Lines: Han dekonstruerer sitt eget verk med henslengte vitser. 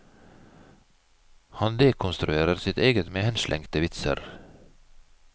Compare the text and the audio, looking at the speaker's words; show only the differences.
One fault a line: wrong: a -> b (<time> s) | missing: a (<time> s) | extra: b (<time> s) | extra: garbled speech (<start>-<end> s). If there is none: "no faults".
missing: verk (3.1 s)